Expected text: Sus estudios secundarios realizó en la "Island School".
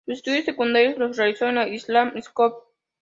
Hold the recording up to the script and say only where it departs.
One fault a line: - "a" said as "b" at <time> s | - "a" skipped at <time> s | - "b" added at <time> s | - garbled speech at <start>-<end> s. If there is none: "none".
- "los" added at 1.0 s